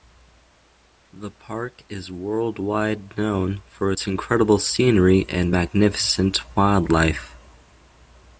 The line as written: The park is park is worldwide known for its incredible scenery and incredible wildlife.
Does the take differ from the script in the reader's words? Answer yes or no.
yes